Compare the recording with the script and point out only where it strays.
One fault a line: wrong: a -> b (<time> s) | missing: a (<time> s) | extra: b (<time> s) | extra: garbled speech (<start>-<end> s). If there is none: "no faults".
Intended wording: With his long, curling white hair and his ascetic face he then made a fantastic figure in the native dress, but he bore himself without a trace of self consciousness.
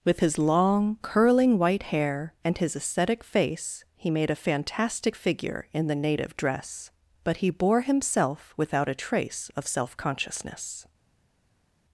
missing: then (4.1 s)